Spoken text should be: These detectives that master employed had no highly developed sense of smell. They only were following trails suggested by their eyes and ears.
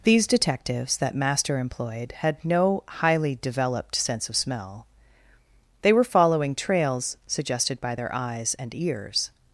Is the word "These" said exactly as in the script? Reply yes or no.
yes